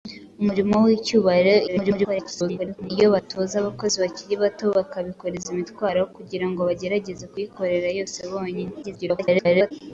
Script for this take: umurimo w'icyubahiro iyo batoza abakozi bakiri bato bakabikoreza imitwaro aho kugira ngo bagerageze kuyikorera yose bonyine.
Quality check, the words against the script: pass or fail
fail